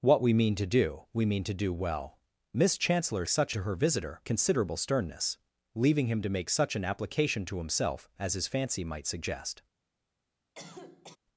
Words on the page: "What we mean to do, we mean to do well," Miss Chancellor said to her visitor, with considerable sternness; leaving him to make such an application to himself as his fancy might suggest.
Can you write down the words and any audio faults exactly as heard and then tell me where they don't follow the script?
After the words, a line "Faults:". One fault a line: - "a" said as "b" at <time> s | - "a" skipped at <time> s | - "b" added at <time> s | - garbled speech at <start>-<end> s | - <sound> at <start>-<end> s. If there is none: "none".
"What we mean to do, we mean to do well," Miss Chancellor such to her visitor, considerable sternness; leaving him to make such an application to himself as his fancy might suggest.
Faults:
- "said" said as "such" at 3.3 s
- "with" skipped at 4.2 s
- cough at 10.5-11.2 s